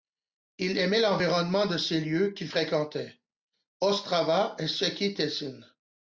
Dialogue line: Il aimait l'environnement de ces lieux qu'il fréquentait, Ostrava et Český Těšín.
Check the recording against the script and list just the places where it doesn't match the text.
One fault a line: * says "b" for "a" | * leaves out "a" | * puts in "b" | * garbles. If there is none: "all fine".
all fine